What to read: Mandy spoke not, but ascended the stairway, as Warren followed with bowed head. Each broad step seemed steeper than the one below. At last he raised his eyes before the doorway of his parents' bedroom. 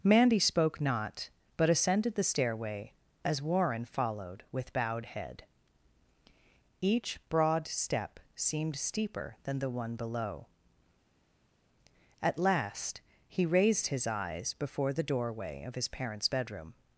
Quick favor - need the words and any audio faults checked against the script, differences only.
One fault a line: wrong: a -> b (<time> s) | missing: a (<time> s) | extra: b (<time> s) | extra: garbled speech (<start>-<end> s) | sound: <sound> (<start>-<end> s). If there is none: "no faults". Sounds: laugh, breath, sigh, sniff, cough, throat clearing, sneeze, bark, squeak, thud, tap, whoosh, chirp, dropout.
no faults